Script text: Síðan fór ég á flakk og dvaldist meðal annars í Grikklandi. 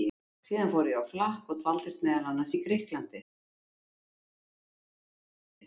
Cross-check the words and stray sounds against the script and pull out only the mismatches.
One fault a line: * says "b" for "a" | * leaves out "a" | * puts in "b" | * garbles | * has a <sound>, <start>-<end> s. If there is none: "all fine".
all fine